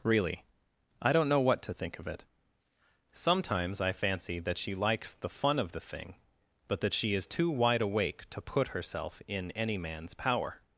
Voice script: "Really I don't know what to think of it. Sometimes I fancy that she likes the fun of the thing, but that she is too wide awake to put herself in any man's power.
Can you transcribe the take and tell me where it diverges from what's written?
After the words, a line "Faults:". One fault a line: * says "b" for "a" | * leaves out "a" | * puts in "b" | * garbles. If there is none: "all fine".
"Really I don't know what to think of it. Sometimes I fancy that she likes the fun of the thing, but that she is too wide awake to put herself in any man's power.
Faults:
all fine